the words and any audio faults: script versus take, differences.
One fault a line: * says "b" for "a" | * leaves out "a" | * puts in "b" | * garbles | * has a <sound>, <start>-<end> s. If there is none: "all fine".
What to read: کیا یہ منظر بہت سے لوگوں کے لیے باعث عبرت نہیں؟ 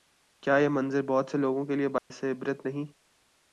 * has a dropout, 2.0-2.1 s